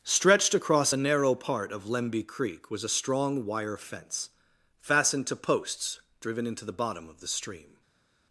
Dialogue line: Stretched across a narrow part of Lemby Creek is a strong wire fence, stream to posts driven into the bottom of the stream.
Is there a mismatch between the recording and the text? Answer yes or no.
yes